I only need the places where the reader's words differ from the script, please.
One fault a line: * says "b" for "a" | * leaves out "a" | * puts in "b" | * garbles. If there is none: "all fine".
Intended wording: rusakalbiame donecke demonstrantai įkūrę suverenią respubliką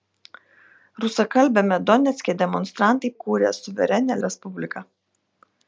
all fine